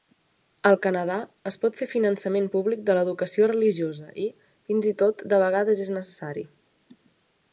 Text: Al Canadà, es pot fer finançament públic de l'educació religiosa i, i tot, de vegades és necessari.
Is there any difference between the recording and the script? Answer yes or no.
yes